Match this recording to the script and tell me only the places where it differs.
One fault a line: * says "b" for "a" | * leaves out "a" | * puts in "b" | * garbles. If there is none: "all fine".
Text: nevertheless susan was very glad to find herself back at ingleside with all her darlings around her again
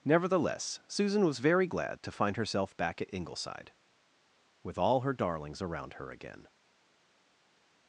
all fine